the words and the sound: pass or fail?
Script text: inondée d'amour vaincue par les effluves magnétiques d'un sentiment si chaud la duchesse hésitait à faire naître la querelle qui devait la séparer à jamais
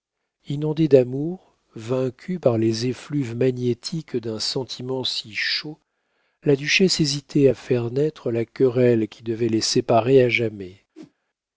fail